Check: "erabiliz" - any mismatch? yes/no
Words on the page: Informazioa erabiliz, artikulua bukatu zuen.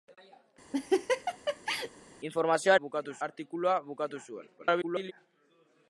yes